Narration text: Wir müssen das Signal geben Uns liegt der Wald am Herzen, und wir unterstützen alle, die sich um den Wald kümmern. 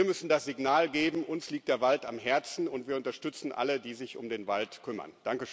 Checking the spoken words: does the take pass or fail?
pass